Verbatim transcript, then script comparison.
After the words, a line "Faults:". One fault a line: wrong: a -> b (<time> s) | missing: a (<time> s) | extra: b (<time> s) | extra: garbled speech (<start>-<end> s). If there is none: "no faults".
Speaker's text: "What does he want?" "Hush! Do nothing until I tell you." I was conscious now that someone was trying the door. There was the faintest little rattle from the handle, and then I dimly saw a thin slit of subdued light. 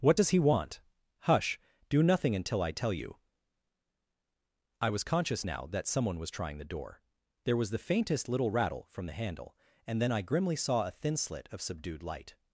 "What does he want?" "Hush! Do nothing until I tell you." I was conscious now that someone was trying the door. There was the faintest little rattle from the handle, and then I grimly saw a thin slit of subdued light.
Faults:
wrong: dimly -> grimly (10.2 s)